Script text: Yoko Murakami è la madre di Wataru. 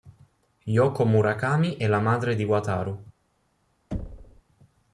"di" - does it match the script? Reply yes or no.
yes